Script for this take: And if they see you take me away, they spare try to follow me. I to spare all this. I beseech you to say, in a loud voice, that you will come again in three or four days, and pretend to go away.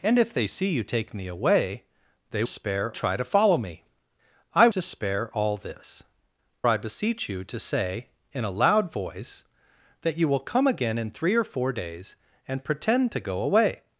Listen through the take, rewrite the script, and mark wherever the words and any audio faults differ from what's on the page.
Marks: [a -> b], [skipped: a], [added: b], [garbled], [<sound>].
And if they see you take me away, they spare try to follow me. I to spare all this. I beseech you to say, in a loud voice, that you will come again in three or four days, and pretend to go away.